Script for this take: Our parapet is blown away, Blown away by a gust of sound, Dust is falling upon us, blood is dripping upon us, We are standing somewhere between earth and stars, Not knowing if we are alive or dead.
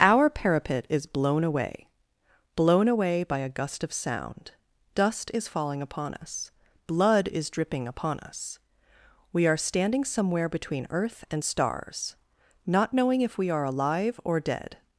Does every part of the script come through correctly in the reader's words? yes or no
yes